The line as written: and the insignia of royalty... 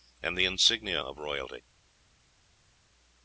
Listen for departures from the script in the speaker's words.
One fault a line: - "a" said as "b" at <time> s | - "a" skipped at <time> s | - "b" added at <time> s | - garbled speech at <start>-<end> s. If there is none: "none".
none